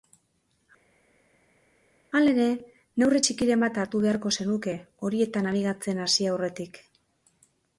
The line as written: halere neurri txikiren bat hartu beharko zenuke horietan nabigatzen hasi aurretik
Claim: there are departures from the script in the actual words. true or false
false